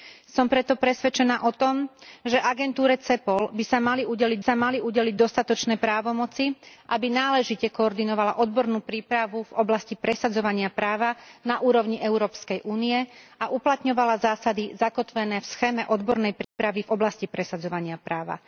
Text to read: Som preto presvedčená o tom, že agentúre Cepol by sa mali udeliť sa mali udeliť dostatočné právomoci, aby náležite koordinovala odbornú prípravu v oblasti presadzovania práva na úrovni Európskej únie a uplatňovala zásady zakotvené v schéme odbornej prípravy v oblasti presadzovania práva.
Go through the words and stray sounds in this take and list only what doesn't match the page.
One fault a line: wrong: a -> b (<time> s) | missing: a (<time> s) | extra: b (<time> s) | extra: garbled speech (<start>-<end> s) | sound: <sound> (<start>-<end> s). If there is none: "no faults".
sound: dropout (16.4-16.6 s)